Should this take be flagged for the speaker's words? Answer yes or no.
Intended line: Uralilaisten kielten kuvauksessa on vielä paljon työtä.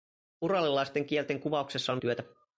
yes